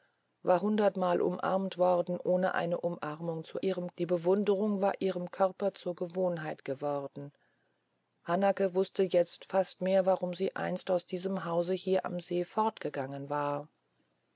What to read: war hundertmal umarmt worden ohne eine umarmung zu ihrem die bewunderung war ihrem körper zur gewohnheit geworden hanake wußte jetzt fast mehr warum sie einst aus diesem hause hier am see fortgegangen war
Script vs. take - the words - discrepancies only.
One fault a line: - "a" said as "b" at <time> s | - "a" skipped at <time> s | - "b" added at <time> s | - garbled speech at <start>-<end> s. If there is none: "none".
none